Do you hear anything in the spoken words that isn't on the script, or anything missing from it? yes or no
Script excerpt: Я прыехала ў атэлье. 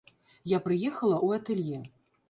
no